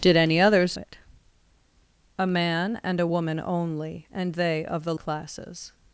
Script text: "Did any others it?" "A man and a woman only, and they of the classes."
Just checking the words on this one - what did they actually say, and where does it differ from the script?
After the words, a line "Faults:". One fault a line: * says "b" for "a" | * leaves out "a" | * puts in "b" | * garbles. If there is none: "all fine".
"Did any others it?" "A man and a woman only, and they of the classes."
Faults:
all fine